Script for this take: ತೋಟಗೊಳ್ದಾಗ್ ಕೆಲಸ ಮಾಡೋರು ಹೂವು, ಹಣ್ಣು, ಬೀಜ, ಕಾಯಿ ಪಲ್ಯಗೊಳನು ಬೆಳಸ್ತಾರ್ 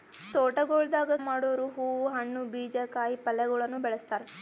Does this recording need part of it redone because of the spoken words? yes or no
yes